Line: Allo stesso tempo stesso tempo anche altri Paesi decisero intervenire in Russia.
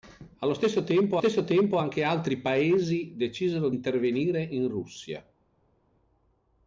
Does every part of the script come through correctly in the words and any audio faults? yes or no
yes